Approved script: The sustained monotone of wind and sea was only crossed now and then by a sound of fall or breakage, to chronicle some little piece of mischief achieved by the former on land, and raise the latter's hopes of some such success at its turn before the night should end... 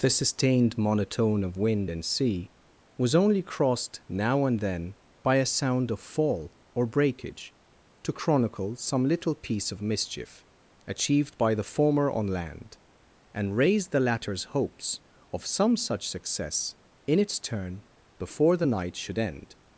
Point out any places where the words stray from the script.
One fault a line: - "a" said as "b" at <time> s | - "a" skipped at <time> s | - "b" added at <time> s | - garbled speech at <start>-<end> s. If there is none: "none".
- "at" said as "in" at 17.1 s